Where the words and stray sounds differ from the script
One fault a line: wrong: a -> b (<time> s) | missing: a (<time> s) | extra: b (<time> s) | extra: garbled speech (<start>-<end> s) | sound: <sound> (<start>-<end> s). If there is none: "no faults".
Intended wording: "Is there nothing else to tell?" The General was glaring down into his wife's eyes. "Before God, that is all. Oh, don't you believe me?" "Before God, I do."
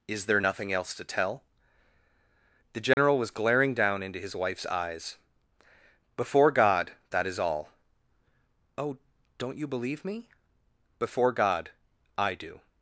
sound: dropout (2.9-3.0 s)